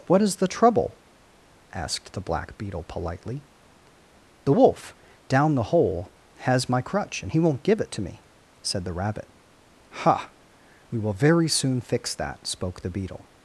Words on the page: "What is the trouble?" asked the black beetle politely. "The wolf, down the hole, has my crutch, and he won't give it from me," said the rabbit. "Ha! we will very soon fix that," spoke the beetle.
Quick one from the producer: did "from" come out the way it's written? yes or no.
no